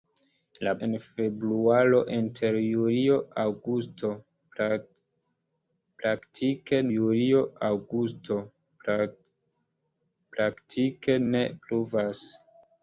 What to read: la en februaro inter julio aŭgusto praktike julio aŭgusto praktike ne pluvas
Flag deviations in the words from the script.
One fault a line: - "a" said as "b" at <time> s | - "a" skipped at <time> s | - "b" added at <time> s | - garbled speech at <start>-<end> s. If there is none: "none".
none